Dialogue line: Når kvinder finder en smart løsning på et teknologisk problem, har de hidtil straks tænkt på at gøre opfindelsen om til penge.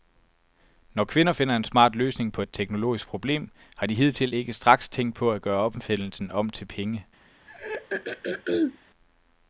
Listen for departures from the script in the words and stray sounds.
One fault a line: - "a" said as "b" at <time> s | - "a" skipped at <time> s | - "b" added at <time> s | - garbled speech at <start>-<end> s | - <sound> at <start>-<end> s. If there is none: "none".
- "ikke" added at 4.3 s
- throat clearing at 7.5-8.8 s